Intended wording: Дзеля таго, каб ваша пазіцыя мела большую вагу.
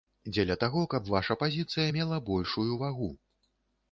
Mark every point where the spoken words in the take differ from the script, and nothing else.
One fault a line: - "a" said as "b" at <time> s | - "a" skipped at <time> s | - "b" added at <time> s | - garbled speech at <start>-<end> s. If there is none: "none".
none